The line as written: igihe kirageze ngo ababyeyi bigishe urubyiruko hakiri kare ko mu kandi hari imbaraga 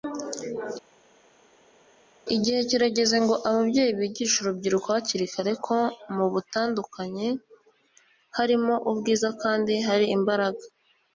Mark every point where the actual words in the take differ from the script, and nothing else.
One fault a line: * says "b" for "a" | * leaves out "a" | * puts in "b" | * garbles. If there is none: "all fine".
* puts in "butandukanye harimo ubwiza"